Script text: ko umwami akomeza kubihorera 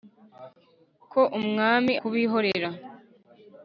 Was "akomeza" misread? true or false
true